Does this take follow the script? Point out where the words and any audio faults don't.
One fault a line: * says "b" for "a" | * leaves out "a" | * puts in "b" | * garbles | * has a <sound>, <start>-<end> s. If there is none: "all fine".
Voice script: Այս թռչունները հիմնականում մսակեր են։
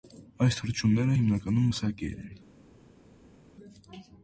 all fine